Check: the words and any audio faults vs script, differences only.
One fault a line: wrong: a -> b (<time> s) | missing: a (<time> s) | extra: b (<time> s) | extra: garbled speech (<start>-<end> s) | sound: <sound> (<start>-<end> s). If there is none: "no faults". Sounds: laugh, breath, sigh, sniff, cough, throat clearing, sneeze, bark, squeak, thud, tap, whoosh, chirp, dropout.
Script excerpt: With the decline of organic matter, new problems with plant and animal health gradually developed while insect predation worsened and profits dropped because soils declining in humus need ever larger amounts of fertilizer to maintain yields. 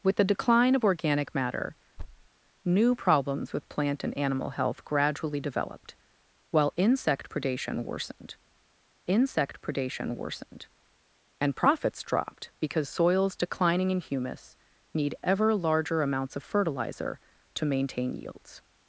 sound: thud (2.0-2.3 s)
extra: insect predation worsened (9.1 s)